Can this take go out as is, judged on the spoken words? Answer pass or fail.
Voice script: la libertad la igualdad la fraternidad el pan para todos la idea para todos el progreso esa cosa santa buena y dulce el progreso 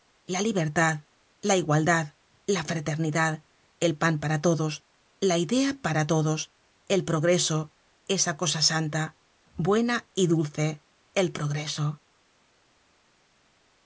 pass